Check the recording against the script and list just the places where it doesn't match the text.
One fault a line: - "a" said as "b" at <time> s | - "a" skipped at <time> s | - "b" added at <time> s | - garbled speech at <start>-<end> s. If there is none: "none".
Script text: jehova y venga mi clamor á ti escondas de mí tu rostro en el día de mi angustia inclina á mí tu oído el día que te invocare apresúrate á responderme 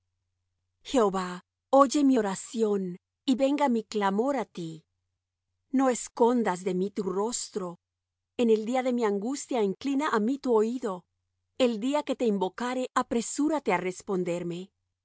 - "oye mi oración" added at 1.7 s
- "no" added at 5.8 s